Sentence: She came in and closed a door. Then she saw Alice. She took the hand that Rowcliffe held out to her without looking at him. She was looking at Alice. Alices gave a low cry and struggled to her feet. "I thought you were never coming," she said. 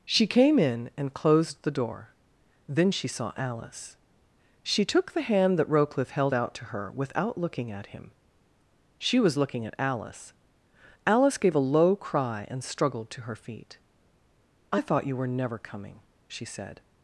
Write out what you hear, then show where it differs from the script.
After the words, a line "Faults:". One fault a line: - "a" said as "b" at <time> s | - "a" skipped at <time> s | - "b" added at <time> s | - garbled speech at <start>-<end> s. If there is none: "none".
She came in and closed the door. Then she saw Alice. She took the hand that Rowcliffe held out to her without looking at him. She was looking at Alice. Alice gave a low cry and struggled to her feet. "I thought you were never coming," she said.
Faults:
- "a" said as "the" at 1.6 s
- "Alices" said as "Alice" at 11.1 s